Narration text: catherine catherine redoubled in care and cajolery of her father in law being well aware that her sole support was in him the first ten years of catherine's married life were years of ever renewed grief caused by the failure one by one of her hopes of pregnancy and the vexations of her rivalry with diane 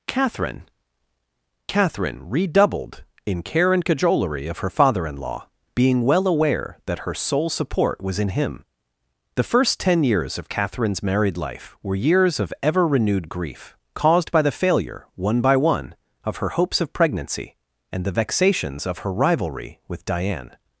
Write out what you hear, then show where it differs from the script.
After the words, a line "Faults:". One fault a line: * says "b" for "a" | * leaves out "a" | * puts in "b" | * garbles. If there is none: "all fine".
catherine catherine redoubled in care and cajolery of her father in law being well aware that her sole support was in him the first ten years of catherine's married life were years of ever renewed grief caused by the failure one by one of her hopes of pregnancy and the vexations of her rivalry with diane
Faults:
all fine